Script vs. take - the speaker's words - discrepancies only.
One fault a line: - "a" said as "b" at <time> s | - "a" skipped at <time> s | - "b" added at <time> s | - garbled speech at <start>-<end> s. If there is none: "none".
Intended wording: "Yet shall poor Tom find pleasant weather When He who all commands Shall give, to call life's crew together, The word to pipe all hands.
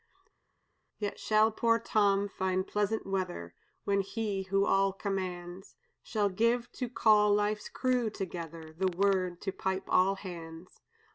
none